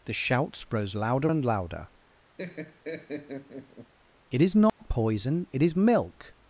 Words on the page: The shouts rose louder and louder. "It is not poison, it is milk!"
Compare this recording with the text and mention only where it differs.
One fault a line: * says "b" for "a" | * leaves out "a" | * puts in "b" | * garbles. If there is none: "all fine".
all fine